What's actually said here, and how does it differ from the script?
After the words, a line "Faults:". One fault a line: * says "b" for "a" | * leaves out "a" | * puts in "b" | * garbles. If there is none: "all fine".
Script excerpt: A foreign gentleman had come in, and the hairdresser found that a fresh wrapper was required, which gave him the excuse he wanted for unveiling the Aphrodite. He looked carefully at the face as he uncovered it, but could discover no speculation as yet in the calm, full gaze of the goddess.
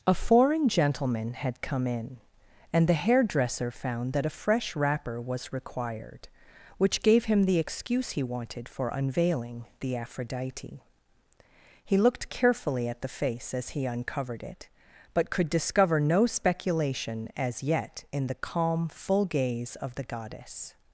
A foreign gentleman had come in, and the hairdresser found that a fresh wrapper was required, which gave him the excuse he wanted for unveiling the Aphrodite. He looked carefully at the face as he uncovered it, but could discover no speculation as yet in the calm, full gaze of the goddess.
Faults:
all fine